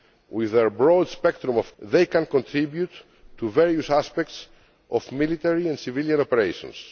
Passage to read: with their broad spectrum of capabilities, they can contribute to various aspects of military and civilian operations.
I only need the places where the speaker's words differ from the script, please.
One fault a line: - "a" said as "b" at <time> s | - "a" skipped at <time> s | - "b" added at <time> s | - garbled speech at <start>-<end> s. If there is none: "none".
- "capabilities" skipped at 1.8 s